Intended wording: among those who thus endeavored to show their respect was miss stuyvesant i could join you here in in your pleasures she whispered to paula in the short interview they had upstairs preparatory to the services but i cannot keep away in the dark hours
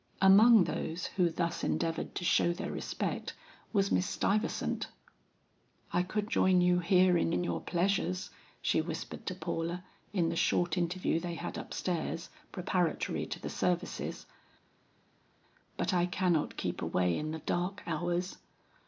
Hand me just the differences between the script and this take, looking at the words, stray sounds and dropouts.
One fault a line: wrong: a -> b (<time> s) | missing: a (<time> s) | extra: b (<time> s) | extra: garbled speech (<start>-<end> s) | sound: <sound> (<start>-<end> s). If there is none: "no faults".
no faults